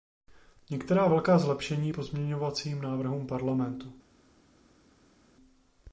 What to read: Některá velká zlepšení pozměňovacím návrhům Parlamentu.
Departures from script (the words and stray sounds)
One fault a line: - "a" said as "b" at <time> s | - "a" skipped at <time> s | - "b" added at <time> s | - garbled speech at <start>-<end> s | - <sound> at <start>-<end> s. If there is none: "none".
none